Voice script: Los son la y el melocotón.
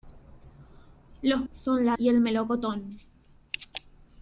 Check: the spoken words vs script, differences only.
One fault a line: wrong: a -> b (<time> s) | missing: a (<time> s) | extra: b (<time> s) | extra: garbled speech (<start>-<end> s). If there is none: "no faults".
no faults